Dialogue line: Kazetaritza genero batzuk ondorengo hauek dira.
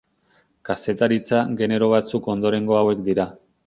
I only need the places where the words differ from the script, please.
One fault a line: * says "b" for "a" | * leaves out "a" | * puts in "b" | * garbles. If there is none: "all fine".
all fine